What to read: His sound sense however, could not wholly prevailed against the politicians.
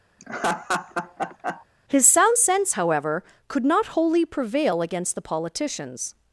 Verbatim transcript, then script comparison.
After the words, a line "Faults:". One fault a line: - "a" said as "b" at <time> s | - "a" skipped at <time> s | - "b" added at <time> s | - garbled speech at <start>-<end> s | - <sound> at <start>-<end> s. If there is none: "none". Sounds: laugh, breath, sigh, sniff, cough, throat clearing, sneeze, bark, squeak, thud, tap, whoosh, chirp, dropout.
His sound sense however, could not wholly prevail against the politicians.
Faults:
- laugh at 0.2-1.7 s
- "prevailed" said as "prevail" at 4.2 s